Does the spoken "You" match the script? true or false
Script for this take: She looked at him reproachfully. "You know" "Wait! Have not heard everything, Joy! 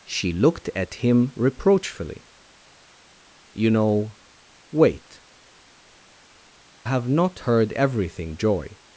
true